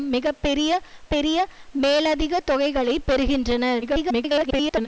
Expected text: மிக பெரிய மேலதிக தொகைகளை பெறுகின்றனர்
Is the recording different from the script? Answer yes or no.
yes